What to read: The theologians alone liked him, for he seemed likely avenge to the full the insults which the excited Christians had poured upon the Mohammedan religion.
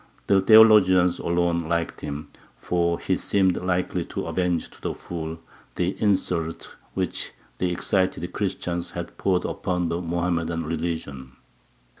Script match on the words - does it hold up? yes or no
no